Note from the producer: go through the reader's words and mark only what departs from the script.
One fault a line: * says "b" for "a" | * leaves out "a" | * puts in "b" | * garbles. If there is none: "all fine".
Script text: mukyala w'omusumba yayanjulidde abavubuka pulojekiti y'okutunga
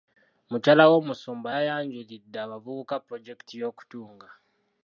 all fine